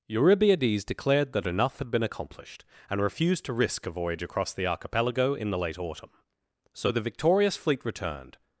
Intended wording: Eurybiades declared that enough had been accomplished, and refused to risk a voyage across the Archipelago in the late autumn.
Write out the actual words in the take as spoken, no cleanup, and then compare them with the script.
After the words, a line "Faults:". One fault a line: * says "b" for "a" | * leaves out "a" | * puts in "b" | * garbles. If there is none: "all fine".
Eurybiades declared that enough had been accomplished, and refused to risk a voyage across the Archipelago in the late autumn. So the victorious fleet returned
Faults:
* puts in "So the victorious fleet returned"